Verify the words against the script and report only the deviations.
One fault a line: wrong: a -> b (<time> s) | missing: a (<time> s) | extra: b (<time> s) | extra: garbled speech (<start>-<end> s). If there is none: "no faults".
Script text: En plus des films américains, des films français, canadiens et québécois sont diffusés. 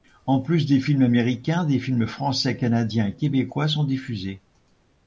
no faults